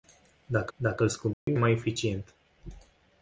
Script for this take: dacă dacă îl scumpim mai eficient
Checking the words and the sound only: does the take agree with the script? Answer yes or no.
no